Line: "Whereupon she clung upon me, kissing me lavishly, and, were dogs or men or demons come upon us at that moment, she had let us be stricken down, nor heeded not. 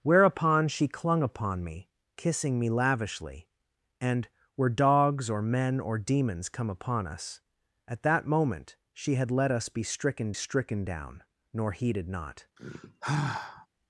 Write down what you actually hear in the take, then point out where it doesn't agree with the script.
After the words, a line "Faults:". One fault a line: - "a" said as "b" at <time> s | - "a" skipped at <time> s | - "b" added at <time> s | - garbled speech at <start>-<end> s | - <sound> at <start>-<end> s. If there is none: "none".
"Whereupon she clung upon me, kissing me lavishly, and, were dogs or men or demons come upon us at that moment, she had let us be stricken stricken down, nor heeded not.
Faults:
- "stricken" added at 10.3 s
- sigh at 12.6-13.7 s